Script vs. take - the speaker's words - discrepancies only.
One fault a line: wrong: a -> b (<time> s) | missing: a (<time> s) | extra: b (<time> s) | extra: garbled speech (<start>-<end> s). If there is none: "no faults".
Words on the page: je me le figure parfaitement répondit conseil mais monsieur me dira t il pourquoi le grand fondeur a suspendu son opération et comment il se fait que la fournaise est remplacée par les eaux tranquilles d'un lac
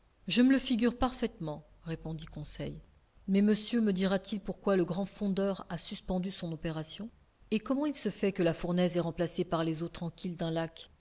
no faults